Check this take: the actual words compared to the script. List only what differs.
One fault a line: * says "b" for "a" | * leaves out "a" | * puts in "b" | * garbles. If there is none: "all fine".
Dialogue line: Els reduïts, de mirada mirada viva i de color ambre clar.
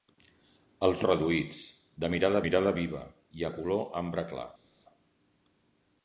all fine